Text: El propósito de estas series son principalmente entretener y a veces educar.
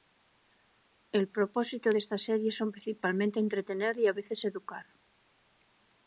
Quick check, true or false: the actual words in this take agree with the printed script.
true